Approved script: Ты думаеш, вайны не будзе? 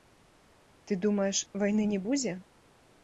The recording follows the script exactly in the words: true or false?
true